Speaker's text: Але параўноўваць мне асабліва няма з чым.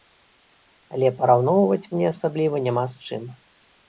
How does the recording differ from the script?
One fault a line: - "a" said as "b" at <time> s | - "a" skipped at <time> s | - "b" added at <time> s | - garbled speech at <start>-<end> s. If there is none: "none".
none